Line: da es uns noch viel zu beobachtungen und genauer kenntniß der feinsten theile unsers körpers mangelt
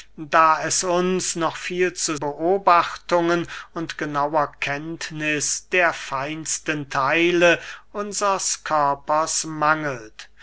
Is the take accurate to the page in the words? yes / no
yes